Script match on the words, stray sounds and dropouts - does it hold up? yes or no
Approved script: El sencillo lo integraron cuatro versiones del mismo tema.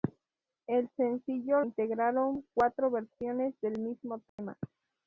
no